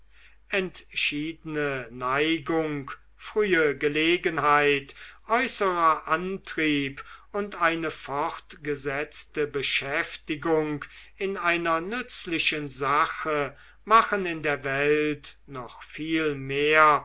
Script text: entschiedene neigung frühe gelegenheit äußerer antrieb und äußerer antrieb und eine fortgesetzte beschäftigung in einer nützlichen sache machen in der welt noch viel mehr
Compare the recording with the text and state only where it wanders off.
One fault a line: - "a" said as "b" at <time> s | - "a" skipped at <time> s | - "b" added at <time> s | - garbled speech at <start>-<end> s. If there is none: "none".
- "äußerer antrieb und" skipped at 7.6 s